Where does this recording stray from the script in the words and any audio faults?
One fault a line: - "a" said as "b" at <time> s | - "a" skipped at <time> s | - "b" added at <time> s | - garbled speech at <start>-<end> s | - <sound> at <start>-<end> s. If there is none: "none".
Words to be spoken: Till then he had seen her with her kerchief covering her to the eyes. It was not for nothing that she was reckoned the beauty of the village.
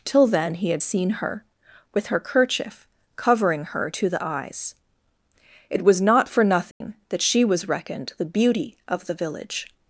- dropout at 6.7-6.8 s